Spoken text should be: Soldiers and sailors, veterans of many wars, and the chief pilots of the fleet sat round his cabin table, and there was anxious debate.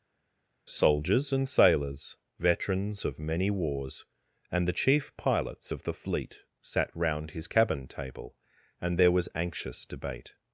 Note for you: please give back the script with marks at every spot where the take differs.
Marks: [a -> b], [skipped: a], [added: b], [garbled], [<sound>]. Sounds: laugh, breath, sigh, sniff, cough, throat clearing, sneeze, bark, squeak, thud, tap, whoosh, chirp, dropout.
Soldiers and sailors, veterans of many wars, and the chief pilots of the fleet sat round his cabin table, and there was anxious debate.